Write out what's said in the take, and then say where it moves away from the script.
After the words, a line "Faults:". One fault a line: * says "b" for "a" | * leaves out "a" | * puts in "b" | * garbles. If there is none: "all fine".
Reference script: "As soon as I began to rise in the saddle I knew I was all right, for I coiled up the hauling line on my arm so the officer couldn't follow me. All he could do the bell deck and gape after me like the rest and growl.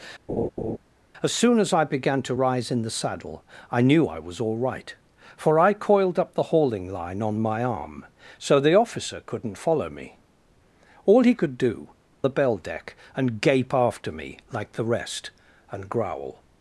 "As soon as I began to rise in the saddle I knew I was all right, for I coiled up the hauling line on my arm so the officer couldn't follow me. All he could do the bell deck and gape after me like the rest and growl.
Faults:
all fine